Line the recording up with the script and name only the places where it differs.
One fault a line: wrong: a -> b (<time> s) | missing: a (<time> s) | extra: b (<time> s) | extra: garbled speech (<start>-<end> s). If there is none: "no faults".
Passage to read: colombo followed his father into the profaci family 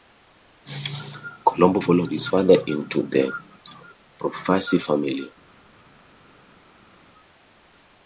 no faults